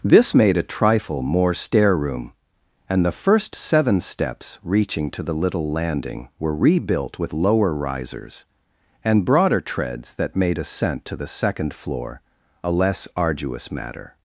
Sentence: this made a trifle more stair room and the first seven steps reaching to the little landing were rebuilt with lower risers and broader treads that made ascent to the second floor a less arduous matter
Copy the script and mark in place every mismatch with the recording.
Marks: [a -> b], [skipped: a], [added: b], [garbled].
this made a trifle more stair room and the first seven steps reaching to the little landing were rebuilt with lower risers and broader treads that made ascent to the second floor a less arduous matter